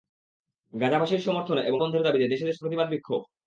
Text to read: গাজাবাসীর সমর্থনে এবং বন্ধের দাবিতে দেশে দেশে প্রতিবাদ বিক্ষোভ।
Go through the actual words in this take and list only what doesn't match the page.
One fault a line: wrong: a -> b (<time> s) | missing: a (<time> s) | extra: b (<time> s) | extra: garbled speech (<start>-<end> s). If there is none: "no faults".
no faults